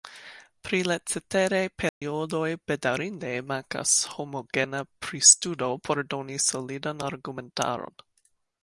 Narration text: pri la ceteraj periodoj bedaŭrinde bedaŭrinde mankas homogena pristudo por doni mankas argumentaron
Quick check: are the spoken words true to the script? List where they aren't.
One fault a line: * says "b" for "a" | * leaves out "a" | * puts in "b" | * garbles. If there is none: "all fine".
* leaves out "bedaŭrinde"
* says "solidan" for "mankas"